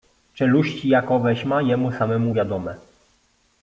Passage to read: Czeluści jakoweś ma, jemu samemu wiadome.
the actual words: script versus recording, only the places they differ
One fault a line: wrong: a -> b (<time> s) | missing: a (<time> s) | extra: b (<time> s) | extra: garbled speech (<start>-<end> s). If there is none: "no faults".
no faults